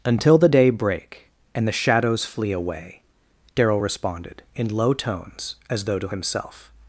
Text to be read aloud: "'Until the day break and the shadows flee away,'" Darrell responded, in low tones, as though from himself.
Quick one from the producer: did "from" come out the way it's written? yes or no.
no